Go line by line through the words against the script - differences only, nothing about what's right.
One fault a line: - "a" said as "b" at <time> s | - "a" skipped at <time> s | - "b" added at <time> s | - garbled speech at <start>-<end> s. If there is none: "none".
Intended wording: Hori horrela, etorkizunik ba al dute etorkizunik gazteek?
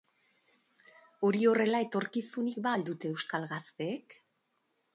- "etorkizunik" said as "euskal" at 3.2 s